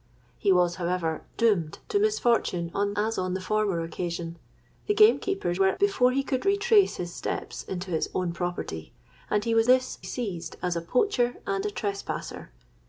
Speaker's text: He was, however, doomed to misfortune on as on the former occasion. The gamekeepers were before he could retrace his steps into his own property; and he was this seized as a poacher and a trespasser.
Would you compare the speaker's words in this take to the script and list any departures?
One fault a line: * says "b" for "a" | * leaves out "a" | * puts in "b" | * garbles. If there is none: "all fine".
all fine